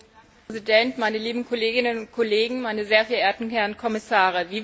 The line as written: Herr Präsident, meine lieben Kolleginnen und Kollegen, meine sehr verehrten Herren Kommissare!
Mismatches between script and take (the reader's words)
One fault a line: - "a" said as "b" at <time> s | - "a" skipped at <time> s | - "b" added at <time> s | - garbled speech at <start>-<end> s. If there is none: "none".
none